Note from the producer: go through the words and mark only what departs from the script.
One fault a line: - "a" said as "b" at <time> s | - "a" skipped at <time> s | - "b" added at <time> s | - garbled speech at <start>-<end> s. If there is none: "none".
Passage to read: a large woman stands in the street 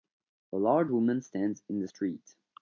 none